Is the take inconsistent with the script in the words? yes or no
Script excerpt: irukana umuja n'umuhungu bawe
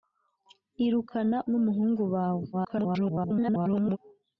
yes